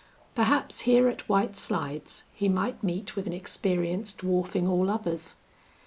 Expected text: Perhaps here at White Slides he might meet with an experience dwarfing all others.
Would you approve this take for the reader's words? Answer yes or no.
yes